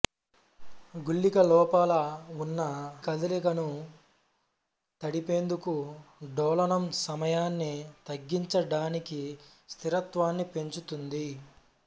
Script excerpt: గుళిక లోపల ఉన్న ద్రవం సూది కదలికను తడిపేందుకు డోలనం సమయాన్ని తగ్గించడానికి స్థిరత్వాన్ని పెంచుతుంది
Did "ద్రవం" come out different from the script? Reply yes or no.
yes